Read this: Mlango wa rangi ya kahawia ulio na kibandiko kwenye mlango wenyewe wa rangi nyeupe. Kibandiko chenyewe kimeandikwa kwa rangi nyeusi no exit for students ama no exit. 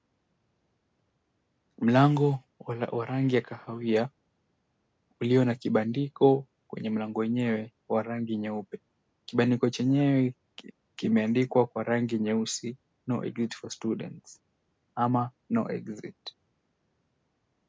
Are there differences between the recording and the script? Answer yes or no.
no